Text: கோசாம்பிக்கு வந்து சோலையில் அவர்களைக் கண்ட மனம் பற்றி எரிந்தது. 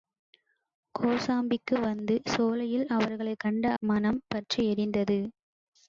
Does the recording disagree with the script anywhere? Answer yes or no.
no